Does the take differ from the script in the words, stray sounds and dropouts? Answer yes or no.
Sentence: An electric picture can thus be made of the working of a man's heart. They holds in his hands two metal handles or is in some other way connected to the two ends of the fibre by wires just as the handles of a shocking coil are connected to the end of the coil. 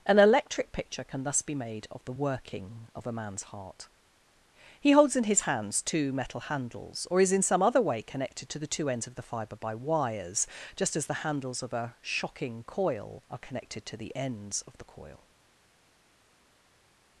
yes